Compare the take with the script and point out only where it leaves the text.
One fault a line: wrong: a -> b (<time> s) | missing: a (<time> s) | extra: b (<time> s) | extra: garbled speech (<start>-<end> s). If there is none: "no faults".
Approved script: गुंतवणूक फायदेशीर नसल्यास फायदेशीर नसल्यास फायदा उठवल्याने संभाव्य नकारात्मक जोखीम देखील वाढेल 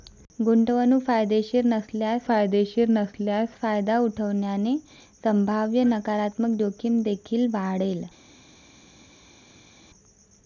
no faults